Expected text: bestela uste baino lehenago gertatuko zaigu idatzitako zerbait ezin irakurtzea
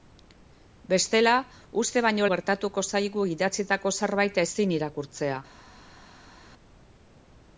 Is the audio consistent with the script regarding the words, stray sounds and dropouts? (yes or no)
no